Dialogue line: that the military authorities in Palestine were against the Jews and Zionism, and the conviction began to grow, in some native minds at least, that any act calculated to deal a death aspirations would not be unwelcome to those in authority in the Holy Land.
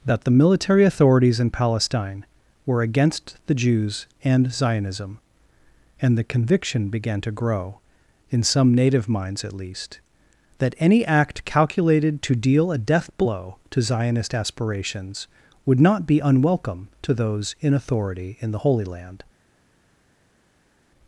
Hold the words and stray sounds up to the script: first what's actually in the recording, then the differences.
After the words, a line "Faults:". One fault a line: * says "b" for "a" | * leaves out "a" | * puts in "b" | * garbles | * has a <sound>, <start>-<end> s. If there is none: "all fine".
that the military authorities in Palestine were against the Jews and Zionism, and the conviction began to grow, in some native minds at least, that any act calculated to deal a death blow to Zionist aspirations would not be unwelcome to those in authority in the Holy Land.
Faults:
* puts in "blow to Zionist"